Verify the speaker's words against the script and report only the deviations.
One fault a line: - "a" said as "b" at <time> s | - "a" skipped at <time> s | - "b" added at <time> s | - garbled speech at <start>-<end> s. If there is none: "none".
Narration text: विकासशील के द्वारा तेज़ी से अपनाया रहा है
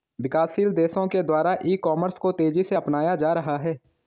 - "देशों" added at 0.7 s
- "ई कॉमर्स को" added at 1.6 s
- "जा" added at 3.2 s